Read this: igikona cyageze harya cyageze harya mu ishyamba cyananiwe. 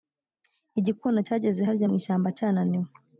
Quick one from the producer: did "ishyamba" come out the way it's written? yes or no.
yes